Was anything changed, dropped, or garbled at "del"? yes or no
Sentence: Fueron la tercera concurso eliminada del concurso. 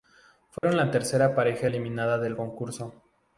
no